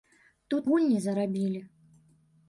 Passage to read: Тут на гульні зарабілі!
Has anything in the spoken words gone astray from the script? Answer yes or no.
yes